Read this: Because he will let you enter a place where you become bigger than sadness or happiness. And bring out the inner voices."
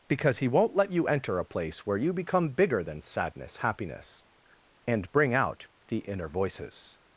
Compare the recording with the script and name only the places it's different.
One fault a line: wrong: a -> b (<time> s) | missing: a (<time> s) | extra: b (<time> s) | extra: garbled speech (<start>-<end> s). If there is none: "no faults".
wrong: will -> won't (0.5 s)
missing: or (3.6 s)